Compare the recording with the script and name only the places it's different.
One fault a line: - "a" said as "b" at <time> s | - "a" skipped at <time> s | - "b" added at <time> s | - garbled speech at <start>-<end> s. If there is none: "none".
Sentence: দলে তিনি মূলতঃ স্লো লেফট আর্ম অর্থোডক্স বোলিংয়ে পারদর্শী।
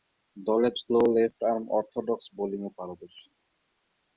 - "তিনি মূলতঃ" skipped at 0.7 s